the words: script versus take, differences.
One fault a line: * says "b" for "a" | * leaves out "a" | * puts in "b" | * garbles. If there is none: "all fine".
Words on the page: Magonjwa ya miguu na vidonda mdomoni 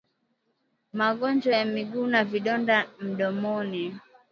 all fine